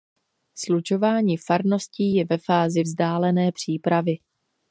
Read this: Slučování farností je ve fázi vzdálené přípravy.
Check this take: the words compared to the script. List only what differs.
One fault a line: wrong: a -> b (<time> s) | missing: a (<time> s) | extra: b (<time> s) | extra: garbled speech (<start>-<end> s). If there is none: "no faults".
no faults